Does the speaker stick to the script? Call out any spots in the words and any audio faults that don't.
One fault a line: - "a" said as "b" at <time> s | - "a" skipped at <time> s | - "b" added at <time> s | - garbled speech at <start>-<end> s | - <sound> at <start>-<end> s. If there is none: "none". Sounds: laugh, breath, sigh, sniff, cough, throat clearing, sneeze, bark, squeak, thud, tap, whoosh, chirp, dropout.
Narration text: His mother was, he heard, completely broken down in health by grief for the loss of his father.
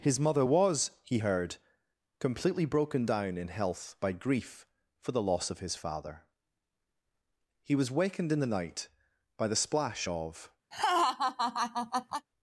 - "He was wakened in the night by the splash of" added at 7.6 s
- laugh at 10.7-12.3 s